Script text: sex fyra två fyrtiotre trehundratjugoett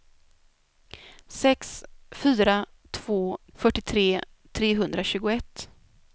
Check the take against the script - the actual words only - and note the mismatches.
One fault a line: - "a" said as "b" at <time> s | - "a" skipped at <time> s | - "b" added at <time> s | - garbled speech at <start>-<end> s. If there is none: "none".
none